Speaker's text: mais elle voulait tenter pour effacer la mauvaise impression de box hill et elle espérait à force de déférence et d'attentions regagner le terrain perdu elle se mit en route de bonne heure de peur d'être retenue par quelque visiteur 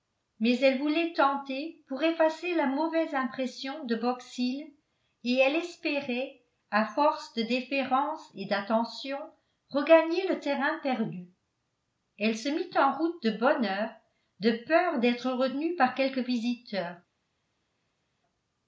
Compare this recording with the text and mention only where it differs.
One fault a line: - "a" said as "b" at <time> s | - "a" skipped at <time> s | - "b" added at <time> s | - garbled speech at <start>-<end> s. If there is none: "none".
none